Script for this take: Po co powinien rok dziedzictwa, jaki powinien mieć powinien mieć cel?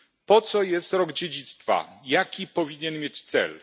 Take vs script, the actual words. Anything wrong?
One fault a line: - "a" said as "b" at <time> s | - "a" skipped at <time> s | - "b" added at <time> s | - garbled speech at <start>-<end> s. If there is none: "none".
- "powinien" said as "jest" at 0.6 s
- "powinien mieć" skipped at 3.2 s